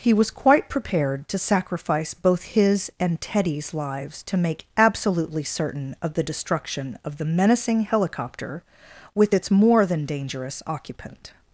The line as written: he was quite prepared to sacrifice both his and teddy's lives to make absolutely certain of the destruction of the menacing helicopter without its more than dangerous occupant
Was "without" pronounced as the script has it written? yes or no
no